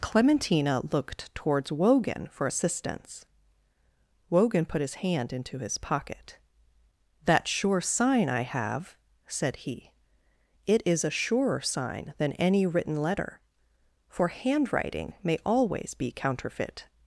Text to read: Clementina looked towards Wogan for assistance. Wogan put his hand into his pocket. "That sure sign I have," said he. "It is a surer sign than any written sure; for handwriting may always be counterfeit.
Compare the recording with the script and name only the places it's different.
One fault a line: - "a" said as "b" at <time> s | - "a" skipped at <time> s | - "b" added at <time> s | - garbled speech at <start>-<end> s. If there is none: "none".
- "sure" said as "letter" at 13.0 s